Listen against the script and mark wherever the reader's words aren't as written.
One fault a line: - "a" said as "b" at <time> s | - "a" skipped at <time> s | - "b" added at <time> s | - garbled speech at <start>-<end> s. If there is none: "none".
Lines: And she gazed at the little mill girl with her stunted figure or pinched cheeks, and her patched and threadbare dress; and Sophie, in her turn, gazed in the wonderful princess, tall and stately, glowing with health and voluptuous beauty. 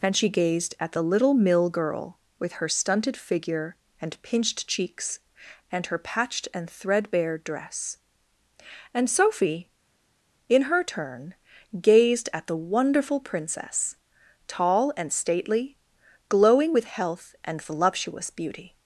- "or" said as "and" at 4.0 s
- "in" said as "at" at 12.3 s